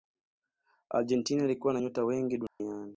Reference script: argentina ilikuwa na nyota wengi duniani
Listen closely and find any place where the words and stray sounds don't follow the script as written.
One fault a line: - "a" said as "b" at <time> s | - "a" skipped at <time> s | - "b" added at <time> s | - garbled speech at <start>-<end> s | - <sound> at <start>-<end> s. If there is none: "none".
- dropout at 2.5-2.6 s